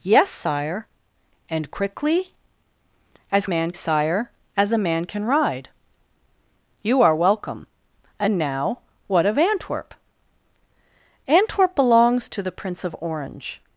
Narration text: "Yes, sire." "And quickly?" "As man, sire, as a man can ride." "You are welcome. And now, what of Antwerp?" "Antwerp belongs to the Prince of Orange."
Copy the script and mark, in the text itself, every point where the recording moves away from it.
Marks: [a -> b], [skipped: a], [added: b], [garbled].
"Yes, sire." "And quickly?" "As man, sire, as a man can ride." "You are welcome. And now, what of Antwerp?" "Antwerp belongs to the Prince of Orange."